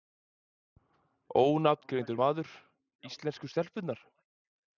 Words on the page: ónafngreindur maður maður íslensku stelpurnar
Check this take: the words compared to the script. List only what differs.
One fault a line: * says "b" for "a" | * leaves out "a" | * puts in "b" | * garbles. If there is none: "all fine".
* leaves out "maður"